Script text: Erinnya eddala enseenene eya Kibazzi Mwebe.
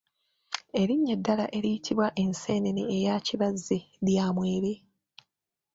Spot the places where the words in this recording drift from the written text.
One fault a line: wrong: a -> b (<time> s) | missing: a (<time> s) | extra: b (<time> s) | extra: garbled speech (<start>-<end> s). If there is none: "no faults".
extra: eriyitibwa (1.6 s)
extra: lya (4.0 s)